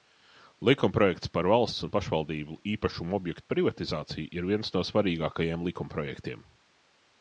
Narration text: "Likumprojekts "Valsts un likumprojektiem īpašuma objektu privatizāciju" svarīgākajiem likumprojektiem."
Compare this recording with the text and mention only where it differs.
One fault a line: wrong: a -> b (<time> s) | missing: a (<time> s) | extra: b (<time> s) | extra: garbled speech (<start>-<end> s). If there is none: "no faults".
extra: Par (1.4 s)
wrong: likumprojektiem -> pašvaldību (2.0 s)
extra: ir viens no (4.4 s)